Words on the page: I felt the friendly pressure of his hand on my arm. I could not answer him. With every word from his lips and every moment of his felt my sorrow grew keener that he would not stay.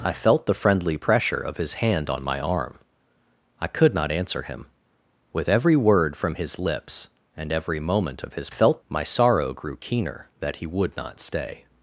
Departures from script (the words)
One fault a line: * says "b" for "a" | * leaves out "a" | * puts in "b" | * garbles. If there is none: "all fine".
all fine